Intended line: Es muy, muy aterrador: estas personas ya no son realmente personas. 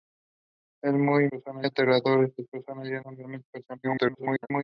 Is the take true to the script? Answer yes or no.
no